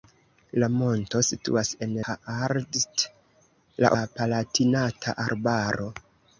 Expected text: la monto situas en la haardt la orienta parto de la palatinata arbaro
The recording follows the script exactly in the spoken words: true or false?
false